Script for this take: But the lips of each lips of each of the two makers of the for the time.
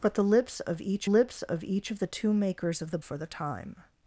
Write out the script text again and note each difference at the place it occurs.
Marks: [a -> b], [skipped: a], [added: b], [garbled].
But the lips of each lips of each of the two makers of the for the time.